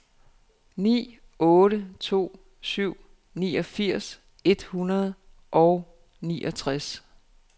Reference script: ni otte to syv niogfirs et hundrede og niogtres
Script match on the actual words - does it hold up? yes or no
yes